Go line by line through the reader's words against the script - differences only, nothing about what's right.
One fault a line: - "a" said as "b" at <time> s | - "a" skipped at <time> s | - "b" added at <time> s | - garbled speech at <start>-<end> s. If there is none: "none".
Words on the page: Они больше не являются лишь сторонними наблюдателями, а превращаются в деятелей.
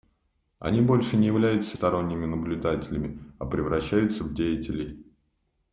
- "лишь" skipped at 1.8 s